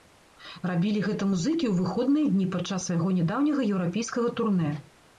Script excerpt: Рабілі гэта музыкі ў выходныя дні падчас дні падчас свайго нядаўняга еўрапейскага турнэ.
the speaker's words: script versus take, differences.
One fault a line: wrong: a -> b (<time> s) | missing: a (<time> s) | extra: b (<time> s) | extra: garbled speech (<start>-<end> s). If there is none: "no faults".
missing: дні падчас (2.9 s)